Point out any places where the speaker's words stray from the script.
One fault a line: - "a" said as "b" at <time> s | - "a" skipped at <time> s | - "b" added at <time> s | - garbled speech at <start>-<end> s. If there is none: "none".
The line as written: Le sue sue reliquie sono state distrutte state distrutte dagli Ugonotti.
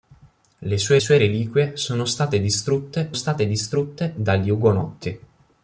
none